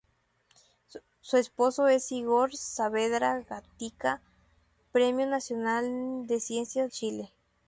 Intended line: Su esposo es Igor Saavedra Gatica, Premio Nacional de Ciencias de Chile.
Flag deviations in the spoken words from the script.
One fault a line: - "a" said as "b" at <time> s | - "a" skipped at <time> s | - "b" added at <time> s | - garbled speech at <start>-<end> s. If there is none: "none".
- "de" skipped at 6.9 s